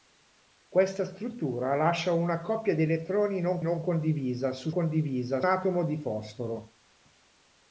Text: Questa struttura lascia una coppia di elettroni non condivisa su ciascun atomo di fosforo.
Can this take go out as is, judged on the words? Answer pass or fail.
fail